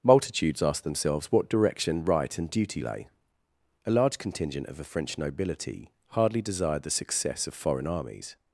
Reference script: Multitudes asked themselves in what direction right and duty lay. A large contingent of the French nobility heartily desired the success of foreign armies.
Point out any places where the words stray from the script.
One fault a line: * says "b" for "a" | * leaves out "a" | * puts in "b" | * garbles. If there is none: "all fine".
* leaves out "in"
* says "hardly" for "heartily"